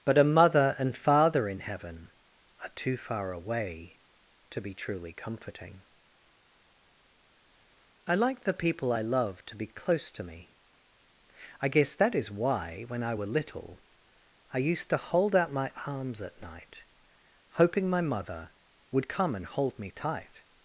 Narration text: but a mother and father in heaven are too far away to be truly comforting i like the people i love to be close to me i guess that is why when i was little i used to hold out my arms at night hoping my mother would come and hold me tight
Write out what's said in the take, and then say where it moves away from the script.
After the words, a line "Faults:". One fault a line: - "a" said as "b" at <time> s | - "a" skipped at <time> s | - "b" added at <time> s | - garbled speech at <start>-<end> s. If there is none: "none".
but a mother and father in heaven are too far away to be truly comforting i like the people i love to be close to me i guess that is why when i were little i used to hold out my arms at night hoping my mother would come and hold me tight
Faults:
- "was" said as "were" at 13.1 s